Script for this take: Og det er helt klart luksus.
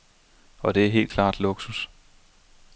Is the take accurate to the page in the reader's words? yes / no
yes